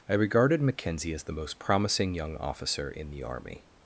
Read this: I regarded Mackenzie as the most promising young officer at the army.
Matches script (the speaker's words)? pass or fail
fail